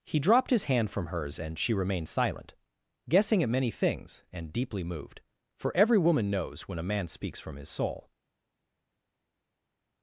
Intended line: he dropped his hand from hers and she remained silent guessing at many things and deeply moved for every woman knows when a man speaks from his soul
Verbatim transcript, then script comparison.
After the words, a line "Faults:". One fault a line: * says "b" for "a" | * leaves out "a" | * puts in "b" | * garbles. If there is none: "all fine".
he dropped his hand from hers and she remained silent guessing at many things and deeply moved for every woman knows when a man speaks from his soul
Faults:
all fine